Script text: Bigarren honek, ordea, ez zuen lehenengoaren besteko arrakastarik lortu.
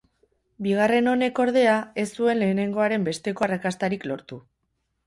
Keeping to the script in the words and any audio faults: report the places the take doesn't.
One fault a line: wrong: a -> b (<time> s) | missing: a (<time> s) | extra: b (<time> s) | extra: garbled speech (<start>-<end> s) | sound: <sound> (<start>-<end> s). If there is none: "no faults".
no faults